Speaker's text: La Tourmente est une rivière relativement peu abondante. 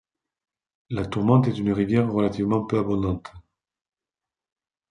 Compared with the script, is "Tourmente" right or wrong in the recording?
right